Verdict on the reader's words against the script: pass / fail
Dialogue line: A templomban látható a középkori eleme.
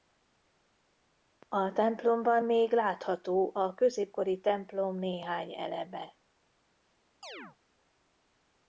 fail